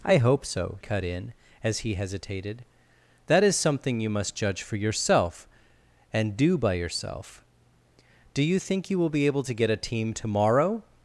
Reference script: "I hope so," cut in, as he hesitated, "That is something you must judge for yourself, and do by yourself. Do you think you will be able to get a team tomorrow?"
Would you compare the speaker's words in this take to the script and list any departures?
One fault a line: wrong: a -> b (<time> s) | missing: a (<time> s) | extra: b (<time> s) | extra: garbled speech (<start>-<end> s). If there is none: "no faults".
no faults